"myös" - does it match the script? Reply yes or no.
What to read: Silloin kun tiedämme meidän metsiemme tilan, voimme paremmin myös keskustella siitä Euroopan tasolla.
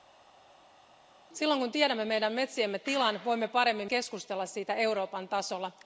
no